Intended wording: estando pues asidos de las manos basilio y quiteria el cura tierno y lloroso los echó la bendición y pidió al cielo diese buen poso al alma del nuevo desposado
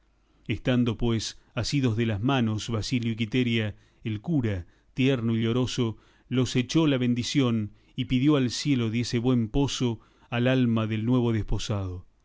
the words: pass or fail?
pass